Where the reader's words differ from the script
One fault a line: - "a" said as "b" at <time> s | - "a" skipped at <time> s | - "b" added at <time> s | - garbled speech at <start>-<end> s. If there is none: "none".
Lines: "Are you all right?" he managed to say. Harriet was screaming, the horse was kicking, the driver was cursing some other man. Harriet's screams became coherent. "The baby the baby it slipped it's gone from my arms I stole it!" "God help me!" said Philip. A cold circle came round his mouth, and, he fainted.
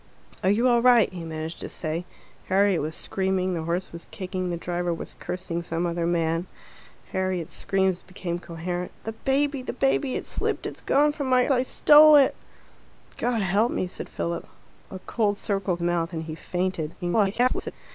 - "arms" skipped at 11.5 s
- "came round his" skipped at 15.8 s
- garbled speech at 17.0-17.7 s